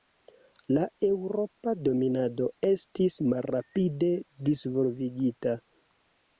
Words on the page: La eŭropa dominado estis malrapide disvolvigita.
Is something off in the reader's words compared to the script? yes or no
no